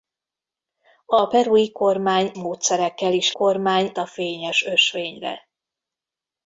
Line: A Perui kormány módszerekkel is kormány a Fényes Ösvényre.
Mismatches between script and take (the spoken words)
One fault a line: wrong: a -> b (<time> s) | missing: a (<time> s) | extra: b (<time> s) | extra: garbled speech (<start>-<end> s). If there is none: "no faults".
no faults